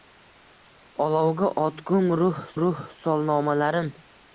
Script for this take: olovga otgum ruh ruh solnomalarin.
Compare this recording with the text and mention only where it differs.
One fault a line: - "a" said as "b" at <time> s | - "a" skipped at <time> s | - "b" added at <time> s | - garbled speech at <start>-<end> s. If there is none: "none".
none